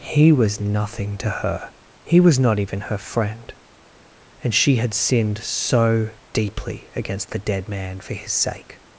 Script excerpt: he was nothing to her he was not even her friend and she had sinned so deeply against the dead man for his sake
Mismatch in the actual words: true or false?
false